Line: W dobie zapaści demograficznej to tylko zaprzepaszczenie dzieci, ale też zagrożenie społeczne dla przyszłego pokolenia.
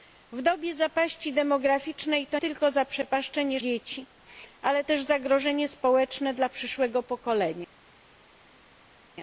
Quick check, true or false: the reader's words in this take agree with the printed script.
true